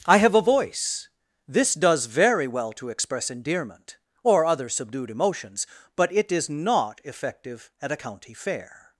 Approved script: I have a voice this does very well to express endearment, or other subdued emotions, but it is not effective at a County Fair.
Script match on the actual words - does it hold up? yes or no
yes